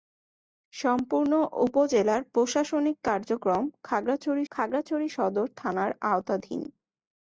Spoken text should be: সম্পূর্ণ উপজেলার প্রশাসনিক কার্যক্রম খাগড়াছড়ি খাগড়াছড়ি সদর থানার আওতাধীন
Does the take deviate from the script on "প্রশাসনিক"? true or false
false